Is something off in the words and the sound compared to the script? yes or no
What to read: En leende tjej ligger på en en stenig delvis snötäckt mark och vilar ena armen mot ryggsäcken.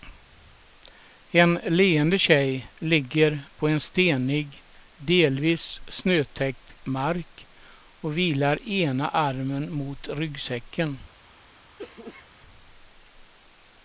yes